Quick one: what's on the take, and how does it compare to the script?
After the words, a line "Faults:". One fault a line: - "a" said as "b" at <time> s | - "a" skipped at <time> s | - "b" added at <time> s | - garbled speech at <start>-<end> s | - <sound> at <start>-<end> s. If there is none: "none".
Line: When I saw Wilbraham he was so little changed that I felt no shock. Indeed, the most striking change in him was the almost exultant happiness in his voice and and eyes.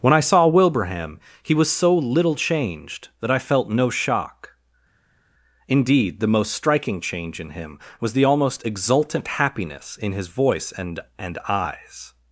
When I saw Wilbraham he was so little changed that I felt no shock. Indeed, the most striking change in him was the almost exultant happiness in his voice and and eyes.
Faults:
none